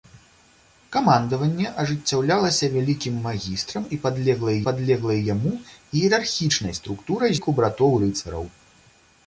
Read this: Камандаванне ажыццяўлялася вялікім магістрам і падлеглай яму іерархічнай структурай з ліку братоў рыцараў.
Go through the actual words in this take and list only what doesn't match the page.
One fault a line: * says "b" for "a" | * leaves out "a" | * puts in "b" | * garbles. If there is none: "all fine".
* puts in "падлеглай"
* leaves out "з"